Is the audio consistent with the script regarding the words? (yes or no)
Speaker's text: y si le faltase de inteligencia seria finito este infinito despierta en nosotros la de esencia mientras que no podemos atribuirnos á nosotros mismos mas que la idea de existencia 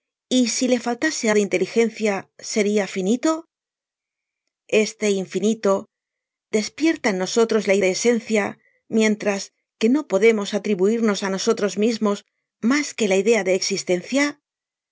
yes